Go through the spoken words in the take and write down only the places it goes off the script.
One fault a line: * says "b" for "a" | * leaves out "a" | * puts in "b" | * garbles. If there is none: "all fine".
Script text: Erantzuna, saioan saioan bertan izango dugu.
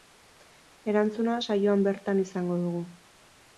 * leaves out "saioan"